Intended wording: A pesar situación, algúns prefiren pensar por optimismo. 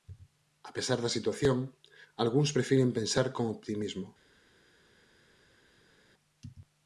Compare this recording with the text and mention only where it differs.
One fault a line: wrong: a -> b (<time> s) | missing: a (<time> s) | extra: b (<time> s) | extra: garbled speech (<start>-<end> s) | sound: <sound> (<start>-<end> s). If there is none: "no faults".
extra: da (1.0 s)
wrong: por -> con (3.3 s)